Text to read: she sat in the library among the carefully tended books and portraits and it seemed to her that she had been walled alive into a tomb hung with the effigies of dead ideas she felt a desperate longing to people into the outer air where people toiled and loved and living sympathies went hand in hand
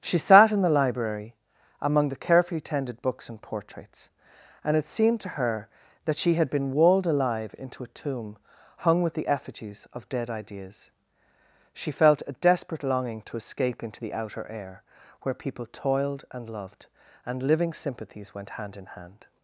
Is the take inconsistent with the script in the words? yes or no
yes